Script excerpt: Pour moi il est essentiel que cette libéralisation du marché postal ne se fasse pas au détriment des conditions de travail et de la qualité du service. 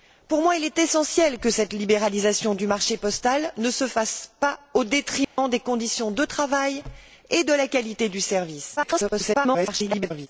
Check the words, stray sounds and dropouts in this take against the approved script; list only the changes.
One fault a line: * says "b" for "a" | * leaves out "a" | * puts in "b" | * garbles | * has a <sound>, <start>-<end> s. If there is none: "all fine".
* has a dropout, 5.2-5.4 s
* garbles